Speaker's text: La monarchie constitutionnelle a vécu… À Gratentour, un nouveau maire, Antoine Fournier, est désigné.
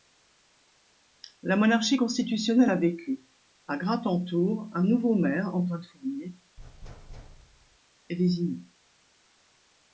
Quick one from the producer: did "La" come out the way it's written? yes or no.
yes